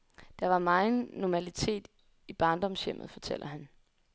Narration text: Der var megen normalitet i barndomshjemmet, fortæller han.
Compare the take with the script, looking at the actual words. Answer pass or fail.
pass